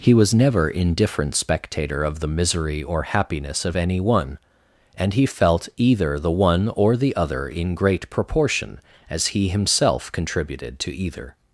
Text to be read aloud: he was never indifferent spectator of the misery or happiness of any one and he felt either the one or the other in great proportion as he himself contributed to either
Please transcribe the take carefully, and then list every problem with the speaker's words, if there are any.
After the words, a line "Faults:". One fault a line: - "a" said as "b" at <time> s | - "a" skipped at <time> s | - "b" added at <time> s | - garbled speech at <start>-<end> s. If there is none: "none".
he was never indifferent spectator of the misery or happiness of any one and he felt either the one or the other in great proportion as he himself contributed to either
Faults:
none